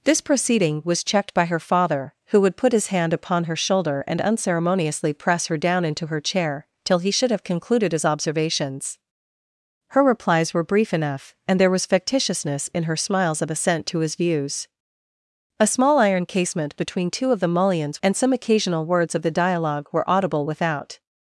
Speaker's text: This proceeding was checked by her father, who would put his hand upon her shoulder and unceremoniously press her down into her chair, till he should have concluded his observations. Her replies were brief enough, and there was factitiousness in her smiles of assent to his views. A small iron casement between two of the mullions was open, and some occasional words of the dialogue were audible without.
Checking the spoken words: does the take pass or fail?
fail